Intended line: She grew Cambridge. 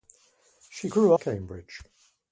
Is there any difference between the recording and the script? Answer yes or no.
no